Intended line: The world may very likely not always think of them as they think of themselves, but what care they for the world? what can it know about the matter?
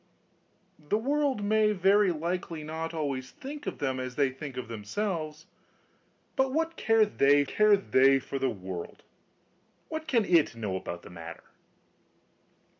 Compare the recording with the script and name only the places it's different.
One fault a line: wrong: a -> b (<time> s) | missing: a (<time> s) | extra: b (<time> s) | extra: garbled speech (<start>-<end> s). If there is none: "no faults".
extra: care they (7.4 s)